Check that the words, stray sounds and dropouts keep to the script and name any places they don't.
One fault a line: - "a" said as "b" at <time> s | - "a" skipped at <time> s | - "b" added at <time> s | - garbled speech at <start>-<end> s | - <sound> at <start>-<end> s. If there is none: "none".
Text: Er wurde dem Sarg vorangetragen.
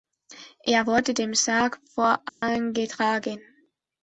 - dropout at 2.3-2.4 s